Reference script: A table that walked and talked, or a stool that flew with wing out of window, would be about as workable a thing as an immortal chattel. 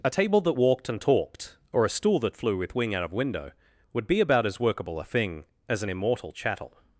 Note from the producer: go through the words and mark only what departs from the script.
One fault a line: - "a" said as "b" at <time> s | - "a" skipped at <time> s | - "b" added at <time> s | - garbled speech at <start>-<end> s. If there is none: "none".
none